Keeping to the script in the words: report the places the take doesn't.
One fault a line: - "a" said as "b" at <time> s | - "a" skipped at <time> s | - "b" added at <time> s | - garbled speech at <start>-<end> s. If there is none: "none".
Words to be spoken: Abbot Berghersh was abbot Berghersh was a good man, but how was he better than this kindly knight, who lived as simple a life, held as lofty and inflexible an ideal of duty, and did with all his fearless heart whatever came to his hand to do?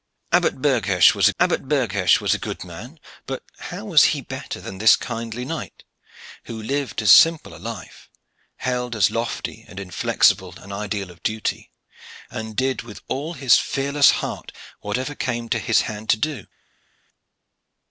none